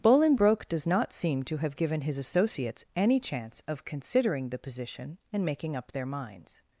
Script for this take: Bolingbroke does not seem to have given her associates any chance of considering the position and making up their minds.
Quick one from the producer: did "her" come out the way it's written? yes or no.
no